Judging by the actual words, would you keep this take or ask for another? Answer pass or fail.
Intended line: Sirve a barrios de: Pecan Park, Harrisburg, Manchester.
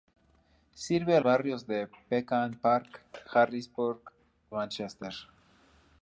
pass